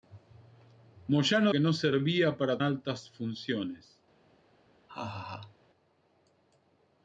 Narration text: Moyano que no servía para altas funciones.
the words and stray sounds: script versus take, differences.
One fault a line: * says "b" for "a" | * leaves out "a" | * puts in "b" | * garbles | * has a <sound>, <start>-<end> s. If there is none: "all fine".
* has a laugh, 4.9-5.6 s